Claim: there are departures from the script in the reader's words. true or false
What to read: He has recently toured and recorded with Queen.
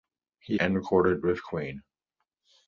true